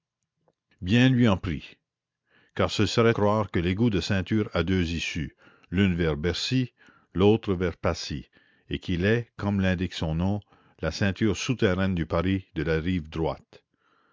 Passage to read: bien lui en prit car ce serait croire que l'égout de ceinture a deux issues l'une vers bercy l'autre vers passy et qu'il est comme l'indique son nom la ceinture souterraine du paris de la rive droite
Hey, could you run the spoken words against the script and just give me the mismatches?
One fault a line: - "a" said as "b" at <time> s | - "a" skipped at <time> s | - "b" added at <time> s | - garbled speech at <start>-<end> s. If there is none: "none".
none